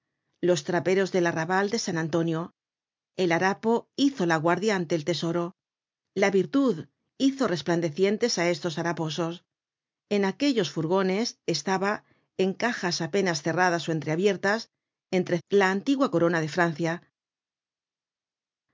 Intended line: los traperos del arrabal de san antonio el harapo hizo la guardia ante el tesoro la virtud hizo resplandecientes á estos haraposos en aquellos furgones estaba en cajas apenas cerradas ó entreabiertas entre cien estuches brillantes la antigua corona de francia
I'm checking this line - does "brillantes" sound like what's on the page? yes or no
no